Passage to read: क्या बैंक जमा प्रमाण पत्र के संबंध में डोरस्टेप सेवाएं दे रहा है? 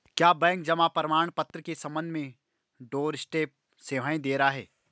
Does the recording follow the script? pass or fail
pass